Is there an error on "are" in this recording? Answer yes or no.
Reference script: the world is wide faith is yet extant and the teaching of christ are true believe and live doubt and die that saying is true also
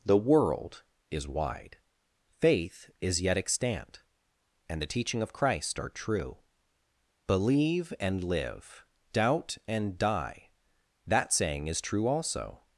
no